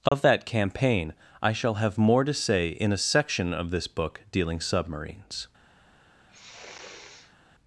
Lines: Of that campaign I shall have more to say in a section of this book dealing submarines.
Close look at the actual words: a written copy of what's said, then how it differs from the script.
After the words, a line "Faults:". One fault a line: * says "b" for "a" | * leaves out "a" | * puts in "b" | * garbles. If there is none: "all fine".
Of that campaign I shall have more to say in a section of this book dealing submarines.
Faults:
all fine